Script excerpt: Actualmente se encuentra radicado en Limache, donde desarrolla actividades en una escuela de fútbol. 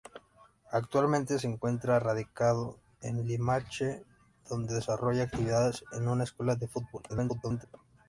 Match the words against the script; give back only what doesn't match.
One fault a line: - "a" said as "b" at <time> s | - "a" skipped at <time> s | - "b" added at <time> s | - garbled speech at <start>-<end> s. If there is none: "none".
- garbled speech at 7.1-7.7 s